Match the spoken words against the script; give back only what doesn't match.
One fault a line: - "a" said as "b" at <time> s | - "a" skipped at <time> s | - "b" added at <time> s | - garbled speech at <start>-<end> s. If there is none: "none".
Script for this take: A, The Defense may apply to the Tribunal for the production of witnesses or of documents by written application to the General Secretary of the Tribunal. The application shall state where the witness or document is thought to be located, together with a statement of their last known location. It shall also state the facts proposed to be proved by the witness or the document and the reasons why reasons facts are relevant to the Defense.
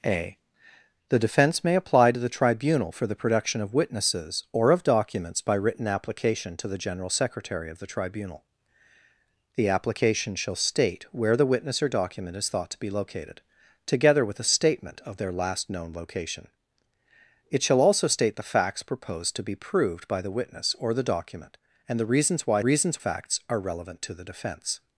none